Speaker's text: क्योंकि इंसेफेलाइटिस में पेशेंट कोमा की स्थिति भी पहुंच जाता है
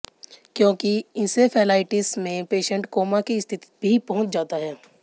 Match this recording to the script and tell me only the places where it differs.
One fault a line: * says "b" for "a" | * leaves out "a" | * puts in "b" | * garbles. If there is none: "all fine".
all fine